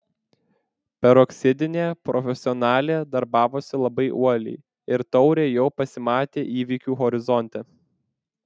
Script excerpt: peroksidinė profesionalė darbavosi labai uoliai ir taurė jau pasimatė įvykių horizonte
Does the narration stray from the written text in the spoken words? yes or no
no